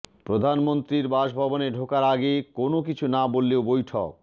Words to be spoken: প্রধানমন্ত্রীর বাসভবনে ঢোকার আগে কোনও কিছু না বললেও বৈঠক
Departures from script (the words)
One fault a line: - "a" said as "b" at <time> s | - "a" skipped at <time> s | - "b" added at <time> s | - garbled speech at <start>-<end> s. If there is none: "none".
none